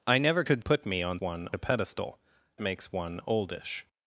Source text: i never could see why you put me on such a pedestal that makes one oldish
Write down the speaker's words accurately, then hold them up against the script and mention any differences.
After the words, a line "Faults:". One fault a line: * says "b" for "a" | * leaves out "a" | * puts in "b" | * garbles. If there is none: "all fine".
i never could put me on one a pedestal makes one oldish
Faults:
* leaves out "see why you"
* says "one" for "such"
* leaves out "that"